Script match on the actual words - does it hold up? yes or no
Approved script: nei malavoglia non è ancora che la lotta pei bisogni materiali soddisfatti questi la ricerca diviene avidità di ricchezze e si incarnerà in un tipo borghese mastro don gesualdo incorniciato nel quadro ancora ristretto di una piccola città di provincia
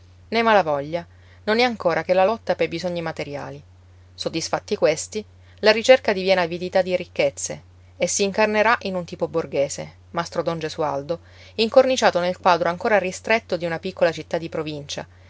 yes